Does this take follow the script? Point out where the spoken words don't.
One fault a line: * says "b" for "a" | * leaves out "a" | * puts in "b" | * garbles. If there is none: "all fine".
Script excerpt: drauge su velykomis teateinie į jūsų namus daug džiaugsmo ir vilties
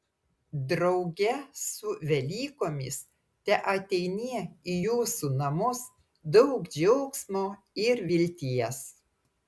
all fine